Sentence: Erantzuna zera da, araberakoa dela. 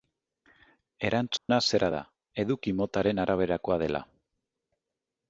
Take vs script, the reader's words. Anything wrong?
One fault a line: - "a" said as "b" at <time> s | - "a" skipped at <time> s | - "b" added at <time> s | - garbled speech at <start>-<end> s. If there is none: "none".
- "eduki motaren" added at 2.4 s